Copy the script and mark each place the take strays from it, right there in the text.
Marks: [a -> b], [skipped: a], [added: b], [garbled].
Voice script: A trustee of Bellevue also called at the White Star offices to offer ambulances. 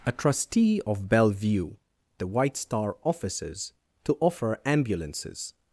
A trustee of Bellevue [skipped: also called at] the White Star offices to offer ambulances.